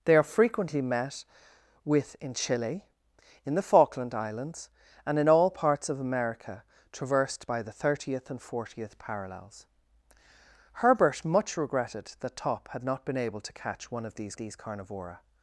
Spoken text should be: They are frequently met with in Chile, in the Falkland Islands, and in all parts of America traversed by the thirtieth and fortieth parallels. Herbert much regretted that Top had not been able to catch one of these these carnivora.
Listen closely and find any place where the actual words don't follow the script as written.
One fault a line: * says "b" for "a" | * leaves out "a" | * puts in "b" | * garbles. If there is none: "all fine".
all fine